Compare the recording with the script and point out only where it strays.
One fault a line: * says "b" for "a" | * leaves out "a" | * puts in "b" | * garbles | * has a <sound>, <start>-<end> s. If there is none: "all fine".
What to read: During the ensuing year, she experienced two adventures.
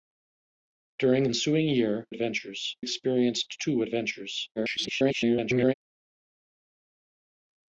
* leaves out "the"
* says "adventures" for "she"
* garbles